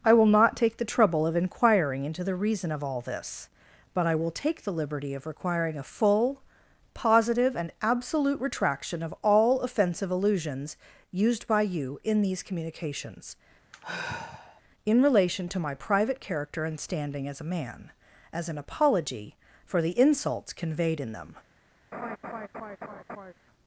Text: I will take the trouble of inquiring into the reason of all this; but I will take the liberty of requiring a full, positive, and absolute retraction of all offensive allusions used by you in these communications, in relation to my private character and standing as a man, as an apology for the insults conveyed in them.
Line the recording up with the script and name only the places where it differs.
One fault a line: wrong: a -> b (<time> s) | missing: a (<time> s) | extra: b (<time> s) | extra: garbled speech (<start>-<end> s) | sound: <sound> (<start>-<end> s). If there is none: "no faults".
extra: not (0.2 s)
sound: sigh (13.7-14.6 s)
sound: laugh (21.9-23.3 s)